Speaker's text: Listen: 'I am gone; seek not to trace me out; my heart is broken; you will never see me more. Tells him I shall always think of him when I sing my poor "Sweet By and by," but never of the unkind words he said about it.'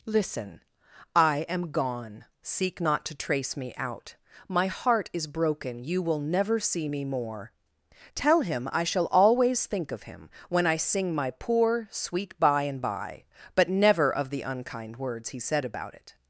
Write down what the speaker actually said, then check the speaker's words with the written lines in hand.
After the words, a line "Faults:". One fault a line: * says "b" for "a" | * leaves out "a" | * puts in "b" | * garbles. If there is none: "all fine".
Listen: 'I am gone; seek not to trace me out; my heart is broken; you will never see me more. Tell him I shall always think of him when I sing my poor "Sweet By and by," but never of the unkind words he said about it.'
Faults:
* says "Tell" for "Tells"